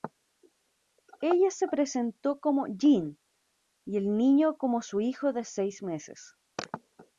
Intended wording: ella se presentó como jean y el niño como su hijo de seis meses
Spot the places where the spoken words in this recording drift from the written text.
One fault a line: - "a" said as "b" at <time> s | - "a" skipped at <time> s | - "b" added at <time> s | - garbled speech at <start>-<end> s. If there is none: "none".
none